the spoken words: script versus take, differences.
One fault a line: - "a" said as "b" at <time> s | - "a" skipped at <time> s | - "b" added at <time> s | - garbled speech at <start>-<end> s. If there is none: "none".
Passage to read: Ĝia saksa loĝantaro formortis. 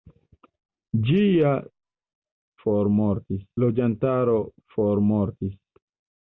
- "saksa" said as "formortis" at 2.7 s